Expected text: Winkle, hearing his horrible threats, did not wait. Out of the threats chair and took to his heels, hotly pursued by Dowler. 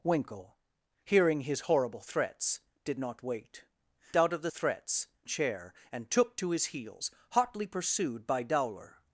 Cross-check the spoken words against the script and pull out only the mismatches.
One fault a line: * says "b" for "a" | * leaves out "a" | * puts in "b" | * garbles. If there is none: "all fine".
all fine